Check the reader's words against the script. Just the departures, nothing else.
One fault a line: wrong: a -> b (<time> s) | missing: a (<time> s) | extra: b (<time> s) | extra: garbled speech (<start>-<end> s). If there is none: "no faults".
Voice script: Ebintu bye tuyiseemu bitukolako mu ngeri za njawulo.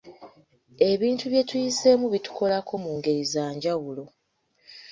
no faults